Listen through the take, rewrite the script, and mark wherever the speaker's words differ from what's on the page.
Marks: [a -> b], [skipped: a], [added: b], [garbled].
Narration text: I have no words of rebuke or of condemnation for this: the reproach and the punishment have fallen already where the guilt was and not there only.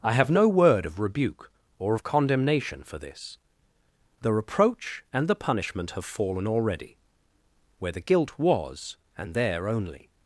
I have no [words -> word] of rebuke or of condemnation for this: the reproach and the punishment have fallen already where the guilt was and [skipped: not] there only.